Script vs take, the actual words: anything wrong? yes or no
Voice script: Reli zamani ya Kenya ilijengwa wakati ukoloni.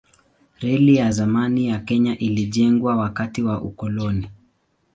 yes